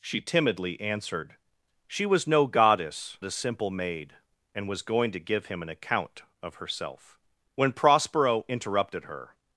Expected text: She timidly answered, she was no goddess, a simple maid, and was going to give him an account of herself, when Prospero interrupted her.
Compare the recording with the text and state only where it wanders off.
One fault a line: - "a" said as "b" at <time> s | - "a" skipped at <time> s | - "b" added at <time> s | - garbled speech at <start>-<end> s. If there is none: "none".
none